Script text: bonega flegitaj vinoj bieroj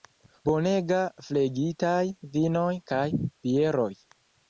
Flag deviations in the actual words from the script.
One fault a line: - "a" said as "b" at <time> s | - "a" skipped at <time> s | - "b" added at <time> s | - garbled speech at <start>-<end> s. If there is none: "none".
- "kaj" added at 2.9 s